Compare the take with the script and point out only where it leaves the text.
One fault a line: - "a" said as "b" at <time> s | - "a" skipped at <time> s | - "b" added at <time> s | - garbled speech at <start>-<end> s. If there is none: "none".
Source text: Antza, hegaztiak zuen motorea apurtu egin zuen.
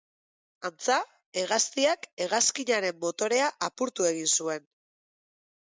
- "zuen" said as "hegazkinaren" at 2.3 s